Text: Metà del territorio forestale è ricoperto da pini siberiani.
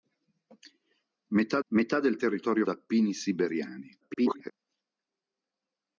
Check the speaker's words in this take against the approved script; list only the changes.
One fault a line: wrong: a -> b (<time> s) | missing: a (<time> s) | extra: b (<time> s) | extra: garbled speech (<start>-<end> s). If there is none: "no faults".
extra: metà (1.7 s)
missing: forestale è ricoperto (2.7 s)
extra: garbled speech (4.0-4.5 s)